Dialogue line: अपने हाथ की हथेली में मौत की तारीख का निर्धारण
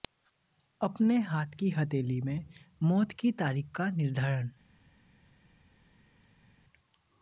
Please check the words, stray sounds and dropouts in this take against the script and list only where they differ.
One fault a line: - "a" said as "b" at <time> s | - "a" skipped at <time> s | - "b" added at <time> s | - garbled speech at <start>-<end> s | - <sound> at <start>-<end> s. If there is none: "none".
none